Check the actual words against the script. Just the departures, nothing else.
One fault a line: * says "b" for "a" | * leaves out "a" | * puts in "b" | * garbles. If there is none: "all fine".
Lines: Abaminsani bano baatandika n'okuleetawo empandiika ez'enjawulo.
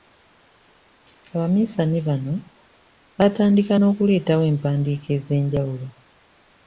all fine